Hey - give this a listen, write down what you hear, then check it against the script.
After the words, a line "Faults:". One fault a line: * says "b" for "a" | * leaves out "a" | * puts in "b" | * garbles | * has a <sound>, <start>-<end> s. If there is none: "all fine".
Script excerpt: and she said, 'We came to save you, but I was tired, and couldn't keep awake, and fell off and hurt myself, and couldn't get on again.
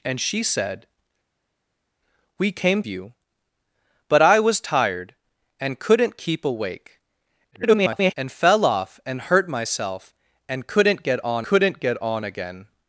and she said, 'We came you, but I was tired, and couldn't keep awake, [garbled] and fell off and hurt myself, and couldn't get on couldn't get on again.
Faults:
* leaves out "to save"
* garbles
* puts in "couldn't get on"